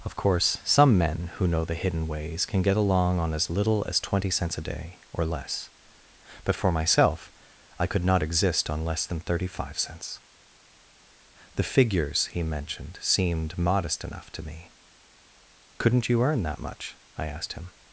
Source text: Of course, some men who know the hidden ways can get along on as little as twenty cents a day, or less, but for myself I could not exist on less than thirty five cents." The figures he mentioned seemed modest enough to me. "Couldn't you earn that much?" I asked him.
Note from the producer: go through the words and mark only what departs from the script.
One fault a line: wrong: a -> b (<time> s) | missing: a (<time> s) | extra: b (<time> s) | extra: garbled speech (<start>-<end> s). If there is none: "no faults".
no faults